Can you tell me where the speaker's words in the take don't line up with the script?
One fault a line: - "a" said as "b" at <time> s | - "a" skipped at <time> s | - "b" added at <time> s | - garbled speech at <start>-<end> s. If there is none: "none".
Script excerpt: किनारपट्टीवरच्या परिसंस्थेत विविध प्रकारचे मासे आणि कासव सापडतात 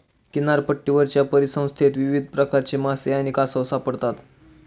none